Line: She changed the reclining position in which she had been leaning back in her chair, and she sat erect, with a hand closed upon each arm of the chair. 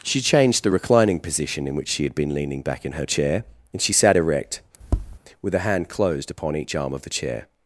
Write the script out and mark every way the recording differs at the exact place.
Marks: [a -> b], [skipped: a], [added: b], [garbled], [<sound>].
She changed the reclining position in which she had been leaning back in her chair, and she sat erect, [tap] with a hand closed upon each arm of the chair.